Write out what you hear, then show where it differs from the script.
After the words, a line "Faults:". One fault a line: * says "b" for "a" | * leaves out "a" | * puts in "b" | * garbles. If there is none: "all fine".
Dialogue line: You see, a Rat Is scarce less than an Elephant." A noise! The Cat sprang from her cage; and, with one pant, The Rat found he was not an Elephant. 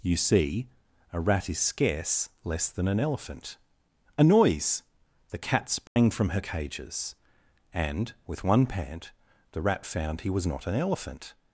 You see, a Rat Is scarce less than an Elephant." A noise! The Cat sprang from her cages; and, with one pant, The Rat found he was not an Elephant.
Faults:
* says "cages" for "cage"